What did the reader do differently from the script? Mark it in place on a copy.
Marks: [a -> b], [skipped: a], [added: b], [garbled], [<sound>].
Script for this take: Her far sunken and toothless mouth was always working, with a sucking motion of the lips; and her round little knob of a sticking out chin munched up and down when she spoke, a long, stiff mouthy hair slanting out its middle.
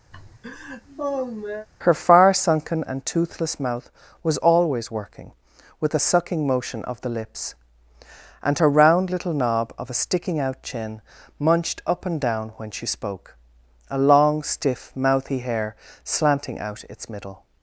[laugh] Her far sunken and toothless mouth was always working, with a sucking motion of the lips; and her round little knob of a sticking out chin munched up and down when she spoke, a long, stiff mouthy hair slanting out its middle.